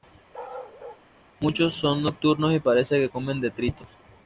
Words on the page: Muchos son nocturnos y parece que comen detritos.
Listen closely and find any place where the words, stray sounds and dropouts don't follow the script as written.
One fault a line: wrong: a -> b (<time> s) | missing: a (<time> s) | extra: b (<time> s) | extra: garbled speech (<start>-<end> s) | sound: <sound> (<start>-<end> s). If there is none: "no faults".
sound: bark (0.3-1.1 s)